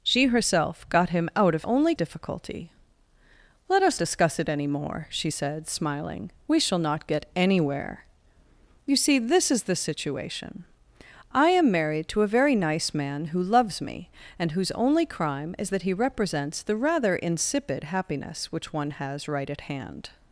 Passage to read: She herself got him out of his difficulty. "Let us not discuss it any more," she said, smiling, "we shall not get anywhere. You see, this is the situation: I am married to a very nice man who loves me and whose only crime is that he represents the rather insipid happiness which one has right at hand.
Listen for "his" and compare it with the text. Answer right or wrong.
wrong